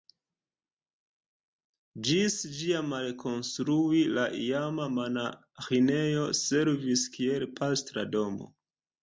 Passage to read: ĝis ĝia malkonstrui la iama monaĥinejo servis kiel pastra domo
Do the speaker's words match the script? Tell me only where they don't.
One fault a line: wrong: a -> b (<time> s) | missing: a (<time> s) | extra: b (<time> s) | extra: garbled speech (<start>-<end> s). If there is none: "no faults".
no faults